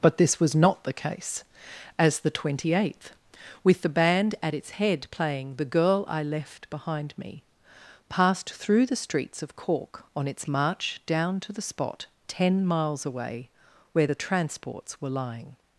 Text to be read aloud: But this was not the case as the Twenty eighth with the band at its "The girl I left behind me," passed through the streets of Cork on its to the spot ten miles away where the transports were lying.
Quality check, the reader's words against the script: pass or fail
fail